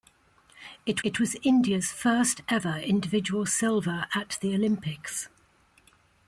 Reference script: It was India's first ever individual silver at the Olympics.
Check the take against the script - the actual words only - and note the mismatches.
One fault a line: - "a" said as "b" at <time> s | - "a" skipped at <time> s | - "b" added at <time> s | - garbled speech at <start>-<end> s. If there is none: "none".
- "it" added at 1.0 s